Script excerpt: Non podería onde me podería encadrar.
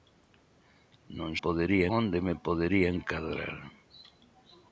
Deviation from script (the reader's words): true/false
false